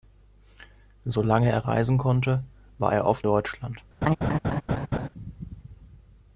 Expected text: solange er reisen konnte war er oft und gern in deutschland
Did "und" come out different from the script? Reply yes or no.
yes